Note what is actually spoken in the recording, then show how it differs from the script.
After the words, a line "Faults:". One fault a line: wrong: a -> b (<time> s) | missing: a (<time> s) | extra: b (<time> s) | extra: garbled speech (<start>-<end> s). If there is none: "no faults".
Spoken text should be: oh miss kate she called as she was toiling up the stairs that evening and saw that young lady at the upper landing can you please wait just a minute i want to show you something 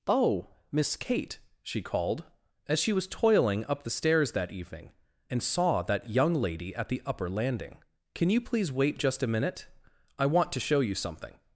oh miss kate she called as she was toiling up the stairs that evening and saw that young lady at the upper landing can you please wait just a minute i want to show you something
Faults:
no faults